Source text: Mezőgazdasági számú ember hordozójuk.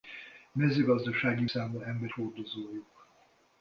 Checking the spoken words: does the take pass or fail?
pass